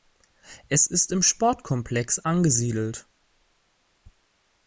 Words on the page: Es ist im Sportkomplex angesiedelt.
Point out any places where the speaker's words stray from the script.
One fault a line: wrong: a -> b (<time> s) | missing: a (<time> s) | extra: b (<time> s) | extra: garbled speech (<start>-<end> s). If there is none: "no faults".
no faults